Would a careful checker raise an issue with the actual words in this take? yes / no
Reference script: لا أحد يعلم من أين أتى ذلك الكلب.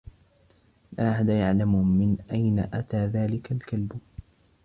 no